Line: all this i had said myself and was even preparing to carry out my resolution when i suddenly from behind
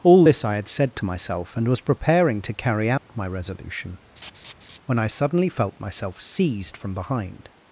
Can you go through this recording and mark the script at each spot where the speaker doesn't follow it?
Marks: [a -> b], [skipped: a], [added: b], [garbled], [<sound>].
all this i had said [added: to] myself and was [skipped: even] preparing to carry out [dropout] my resolution [laugh] when i suddenly [added: felt myself seized] from behind